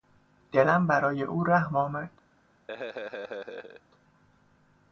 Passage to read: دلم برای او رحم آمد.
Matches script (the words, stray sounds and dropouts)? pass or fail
fail